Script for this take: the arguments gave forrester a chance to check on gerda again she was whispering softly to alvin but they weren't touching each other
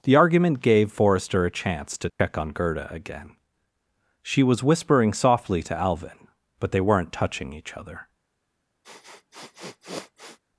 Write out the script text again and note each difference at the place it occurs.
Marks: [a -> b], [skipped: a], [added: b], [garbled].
the [arguments -> argument] gave forrester a chance to check on gerda again she was whispering softly to alvin but they weren't touching each other